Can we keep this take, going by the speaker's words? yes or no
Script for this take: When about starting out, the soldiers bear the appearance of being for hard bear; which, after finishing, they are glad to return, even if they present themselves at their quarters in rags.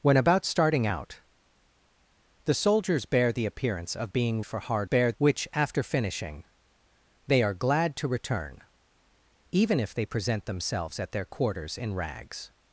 yes